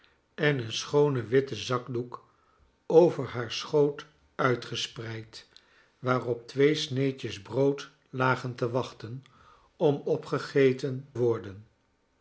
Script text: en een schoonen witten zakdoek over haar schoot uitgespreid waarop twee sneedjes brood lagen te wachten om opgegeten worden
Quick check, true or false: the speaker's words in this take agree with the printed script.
true